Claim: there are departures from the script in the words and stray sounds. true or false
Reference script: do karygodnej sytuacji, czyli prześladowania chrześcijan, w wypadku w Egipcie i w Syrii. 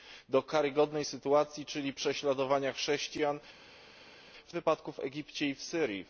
false